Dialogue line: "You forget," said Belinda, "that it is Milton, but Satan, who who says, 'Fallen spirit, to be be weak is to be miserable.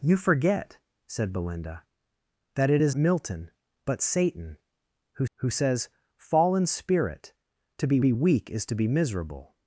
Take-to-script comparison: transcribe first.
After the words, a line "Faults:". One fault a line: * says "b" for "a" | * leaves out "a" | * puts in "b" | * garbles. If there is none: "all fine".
"You forget," said Belinda, "that it is Milton, but Satan, who who says, 'Fallen spirit, to be be weak is to be miserable.
Faults:
all fine